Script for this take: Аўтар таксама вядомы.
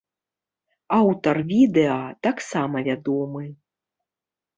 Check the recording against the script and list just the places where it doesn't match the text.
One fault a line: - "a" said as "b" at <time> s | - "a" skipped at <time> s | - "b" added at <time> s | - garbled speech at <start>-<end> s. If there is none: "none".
- "відэа" added at 1.5 s